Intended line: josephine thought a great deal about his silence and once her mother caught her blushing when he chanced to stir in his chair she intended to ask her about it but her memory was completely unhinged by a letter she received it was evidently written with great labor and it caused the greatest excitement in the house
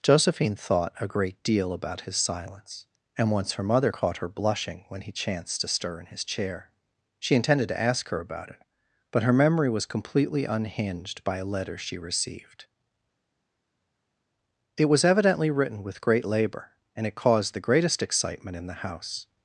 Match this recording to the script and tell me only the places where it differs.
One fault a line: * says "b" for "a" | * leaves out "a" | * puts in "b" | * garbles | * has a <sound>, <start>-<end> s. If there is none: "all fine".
all fine